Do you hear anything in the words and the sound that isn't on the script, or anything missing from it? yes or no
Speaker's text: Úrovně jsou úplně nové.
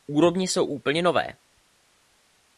no